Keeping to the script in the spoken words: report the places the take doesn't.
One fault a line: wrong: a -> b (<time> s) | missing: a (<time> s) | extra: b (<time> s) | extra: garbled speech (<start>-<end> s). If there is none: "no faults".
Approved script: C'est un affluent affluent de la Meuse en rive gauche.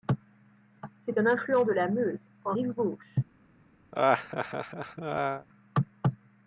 missing: affluent (1.7 s)